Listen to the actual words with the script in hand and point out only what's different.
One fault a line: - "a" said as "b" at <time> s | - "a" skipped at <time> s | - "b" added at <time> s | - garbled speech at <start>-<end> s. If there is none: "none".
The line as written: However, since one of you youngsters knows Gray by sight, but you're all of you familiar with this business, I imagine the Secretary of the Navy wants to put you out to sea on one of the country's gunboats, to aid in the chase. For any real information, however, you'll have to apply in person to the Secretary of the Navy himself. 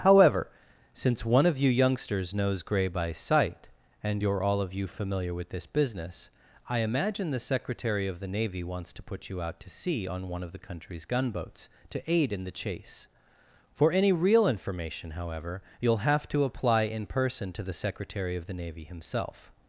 - "but" said as "and" at 4.0 s